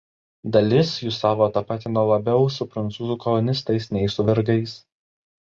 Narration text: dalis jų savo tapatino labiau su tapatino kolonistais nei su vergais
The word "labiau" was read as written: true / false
true